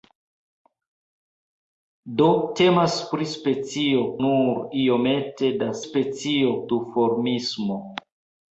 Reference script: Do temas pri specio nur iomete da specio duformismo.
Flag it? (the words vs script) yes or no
no